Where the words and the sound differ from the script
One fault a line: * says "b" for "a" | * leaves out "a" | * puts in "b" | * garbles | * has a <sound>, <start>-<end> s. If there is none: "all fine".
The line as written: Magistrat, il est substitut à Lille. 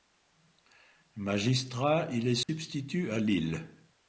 * has a dropout, 2.4-2.5 s